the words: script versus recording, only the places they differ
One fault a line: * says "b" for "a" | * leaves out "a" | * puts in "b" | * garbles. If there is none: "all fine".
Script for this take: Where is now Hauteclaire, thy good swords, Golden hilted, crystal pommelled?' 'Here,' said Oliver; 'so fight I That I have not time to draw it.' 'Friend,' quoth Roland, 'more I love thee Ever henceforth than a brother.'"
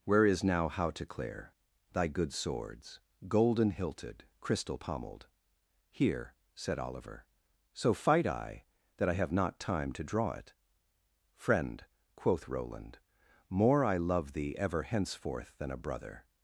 all fine